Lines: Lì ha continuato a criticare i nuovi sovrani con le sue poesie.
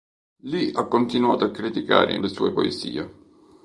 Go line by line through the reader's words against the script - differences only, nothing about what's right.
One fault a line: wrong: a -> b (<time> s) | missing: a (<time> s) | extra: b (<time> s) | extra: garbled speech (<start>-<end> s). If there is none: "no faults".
missing: nuovi sovrani con (2.2 s)